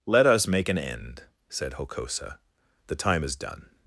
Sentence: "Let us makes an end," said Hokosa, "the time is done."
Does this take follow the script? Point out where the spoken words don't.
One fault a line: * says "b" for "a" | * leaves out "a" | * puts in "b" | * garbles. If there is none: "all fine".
* says "make" for "makes"